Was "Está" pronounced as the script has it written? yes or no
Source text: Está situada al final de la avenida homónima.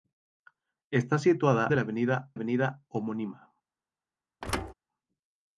yes